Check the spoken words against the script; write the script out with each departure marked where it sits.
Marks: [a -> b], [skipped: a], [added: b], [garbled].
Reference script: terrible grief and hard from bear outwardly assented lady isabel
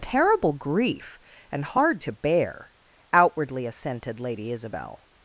terrible grief and hard [from -> to] bear outwardly assented lady isabel